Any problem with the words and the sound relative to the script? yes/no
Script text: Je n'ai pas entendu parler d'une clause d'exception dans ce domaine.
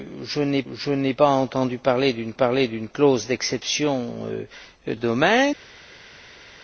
yes